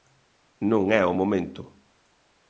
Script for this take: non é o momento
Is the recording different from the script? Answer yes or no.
no